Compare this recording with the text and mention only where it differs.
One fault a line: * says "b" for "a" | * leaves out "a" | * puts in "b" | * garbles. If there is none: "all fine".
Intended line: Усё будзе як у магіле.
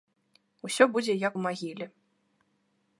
all fine